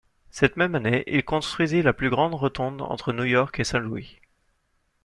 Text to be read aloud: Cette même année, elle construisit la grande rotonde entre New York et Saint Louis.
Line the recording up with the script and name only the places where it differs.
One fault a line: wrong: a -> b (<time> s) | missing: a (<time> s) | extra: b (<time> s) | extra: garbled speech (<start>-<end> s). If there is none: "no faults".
wrong: elle -> il (1.1 s)
extra: plus (1.9 s)